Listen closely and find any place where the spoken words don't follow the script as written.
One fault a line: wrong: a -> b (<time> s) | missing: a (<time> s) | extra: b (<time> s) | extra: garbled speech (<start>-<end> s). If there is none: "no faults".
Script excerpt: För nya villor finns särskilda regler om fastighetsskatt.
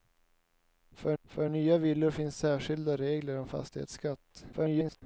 extra: för (1.2 s)
extra: garbled speech (4.5-5.0 s)